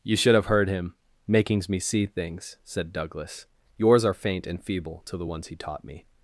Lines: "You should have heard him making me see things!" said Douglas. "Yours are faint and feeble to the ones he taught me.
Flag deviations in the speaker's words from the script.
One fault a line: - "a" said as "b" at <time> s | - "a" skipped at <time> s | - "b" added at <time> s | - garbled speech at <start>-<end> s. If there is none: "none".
- "making" said as "makings" at 1.3 s